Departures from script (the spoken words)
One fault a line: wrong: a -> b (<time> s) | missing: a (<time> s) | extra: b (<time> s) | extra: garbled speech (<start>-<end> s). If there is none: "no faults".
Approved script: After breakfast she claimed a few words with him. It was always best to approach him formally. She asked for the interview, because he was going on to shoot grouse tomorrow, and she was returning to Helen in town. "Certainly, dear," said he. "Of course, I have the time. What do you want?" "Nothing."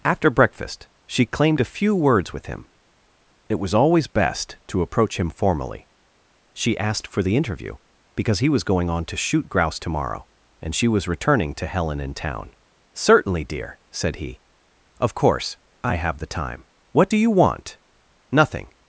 no faults